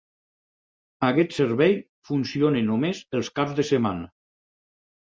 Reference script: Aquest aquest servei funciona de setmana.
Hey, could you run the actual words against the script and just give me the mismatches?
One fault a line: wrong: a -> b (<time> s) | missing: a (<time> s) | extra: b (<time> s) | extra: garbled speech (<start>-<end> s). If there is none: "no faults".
missing: aquest (1.4 s)
extra: només els caps (2.7 s)